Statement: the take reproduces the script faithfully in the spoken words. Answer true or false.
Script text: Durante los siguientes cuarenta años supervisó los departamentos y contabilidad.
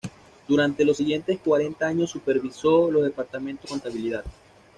true